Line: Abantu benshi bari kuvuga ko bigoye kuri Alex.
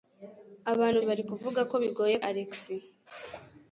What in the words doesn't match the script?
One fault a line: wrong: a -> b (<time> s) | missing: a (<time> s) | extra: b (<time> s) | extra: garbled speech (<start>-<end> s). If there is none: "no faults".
missing: benshi (1.0 s)
missing: kuri (2.2 s)